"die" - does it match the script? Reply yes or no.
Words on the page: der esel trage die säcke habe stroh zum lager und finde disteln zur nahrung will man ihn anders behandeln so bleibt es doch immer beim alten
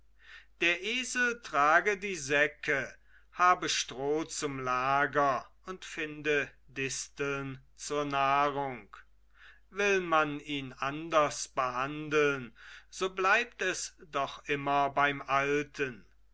yes